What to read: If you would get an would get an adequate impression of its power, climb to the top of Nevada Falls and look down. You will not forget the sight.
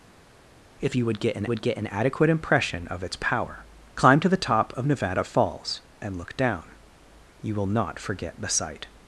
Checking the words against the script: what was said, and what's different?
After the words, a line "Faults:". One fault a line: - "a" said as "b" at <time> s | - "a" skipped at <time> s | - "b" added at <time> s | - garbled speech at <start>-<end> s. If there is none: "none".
If you would get an would get an adequate impression of its power, climb to the top of Nevada Falls and look down. You will not forget the sight.
Faults:
none